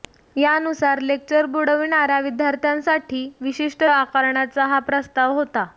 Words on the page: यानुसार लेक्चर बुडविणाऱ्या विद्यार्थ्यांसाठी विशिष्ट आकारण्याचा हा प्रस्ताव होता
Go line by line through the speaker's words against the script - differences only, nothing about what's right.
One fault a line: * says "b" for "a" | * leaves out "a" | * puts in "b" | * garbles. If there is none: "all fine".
all fine